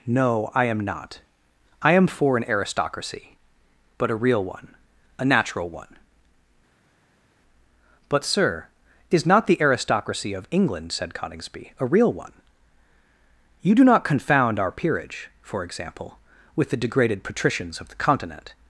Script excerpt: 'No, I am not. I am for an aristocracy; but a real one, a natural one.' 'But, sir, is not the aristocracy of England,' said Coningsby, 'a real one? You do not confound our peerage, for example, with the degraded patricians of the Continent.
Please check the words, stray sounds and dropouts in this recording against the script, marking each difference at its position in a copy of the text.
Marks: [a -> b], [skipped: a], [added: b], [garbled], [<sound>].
'No, I am not. I am for an aristocracy; but a real one, a natural one.' 'But, sir, is not the aristocracy of England,' said Coningsby, 'a real one? You do not confound our peerage, for example, with the degraded patricians of the Continent.